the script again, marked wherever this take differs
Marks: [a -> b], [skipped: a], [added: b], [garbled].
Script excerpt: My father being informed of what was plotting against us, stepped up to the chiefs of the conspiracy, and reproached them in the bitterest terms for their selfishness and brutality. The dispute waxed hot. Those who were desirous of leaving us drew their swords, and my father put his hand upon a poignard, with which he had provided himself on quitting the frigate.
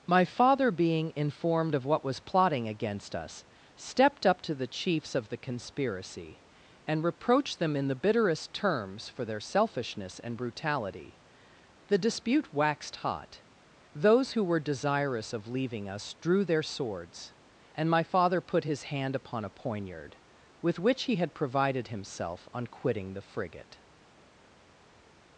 My father being informed of what was plotting against us, stepped up to the chiefs of the conspiracy, and reproached them in the bitterest terms for their selfishness and brutality. The dispute waxed hot. Those who were desirous of leaving us drew their swords, and my father put his hand upon a poignard, with which he had provided himself on quitting the frigate.